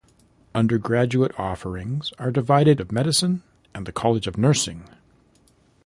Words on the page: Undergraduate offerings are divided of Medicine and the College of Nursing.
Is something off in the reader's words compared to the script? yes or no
no